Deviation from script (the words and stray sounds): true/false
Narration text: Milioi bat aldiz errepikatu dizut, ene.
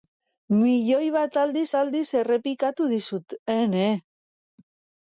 true